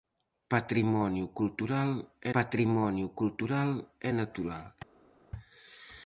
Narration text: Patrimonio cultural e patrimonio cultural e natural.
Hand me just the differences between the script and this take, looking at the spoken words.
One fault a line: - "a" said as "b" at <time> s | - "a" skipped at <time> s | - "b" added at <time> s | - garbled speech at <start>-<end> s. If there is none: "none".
none